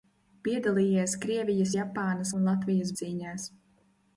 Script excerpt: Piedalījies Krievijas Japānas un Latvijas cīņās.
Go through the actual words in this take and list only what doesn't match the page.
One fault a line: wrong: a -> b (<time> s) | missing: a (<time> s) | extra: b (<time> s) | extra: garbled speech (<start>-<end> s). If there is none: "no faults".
no faults